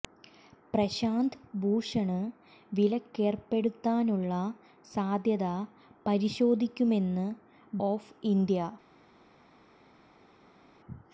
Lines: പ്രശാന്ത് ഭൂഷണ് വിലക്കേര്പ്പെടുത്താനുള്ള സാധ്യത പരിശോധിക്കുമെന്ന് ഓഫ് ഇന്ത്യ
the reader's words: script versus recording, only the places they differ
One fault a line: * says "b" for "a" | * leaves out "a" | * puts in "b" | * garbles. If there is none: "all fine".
all fine